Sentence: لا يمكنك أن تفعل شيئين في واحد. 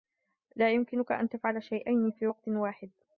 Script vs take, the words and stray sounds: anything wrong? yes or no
yes